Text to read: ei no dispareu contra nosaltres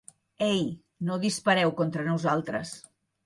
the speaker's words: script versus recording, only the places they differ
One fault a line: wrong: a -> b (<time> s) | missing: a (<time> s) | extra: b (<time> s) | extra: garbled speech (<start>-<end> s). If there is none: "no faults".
no faults